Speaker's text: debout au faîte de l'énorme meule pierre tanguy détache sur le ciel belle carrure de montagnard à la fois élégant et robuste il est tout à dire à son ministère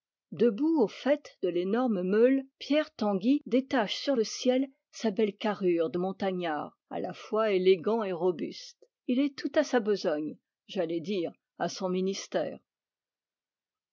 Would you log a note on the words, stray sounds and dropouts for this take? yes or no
yes